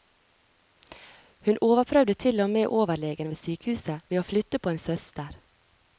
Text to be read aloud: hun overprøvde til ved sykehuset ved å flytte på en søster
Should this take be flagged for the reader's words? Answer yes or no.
yes